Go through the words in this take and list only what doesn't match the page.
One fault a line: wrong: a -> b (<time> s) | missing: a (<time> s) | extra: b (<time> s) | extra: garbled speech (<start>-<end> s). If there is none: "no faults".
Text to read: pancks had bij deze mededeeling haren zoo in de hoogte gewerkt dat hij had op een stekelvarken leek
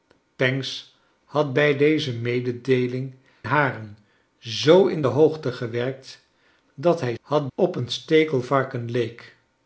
no faults